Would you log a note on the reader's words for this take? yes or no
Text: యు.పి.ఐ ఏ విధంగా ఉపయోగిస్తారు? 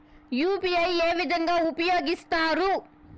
no